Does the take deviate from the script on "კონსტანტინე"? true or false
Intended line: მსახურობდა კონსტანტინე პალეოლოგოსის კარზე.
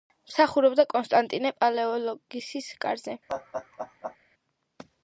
false